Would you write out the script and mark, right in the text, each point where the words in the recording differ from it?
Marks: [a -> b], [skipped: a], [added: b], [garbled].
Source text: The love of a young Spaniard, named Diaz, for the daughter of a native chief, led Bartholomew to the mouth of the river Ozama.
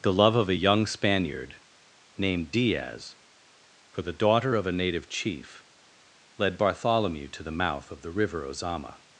The love of a young Spaniard, named Diaz, for the daughter of a native chief, led Bartholomew to the mouth of the river Ozama.